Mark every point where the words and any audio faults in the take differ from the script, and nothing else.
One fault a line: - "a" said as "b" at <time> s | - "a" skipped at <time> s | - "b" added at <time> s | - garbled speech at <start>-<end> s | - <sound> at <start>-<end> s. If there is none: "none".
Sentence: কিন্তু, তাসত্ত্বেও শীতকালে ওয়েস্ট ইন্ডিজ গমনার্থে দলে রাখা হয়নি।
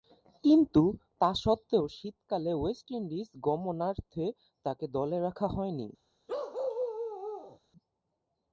- "তাকে" added at 4.7 s
- bark at 6.3-7.6 s